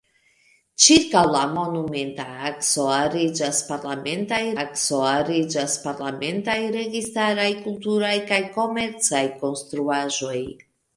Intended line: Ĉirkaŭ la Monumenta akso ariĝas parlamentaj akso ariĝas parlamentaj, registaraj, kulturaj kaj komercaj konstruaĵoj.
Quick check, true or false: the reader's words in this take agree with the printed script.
true